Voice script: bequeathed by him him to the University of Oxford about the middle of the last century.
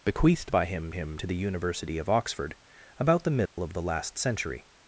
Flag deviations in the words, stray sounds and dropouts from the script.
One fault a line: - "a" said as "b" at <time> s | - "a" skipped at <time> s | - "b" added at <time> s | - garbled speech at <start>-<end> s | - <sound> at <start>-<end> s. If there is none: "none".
- dropout at 3.5-3.6 s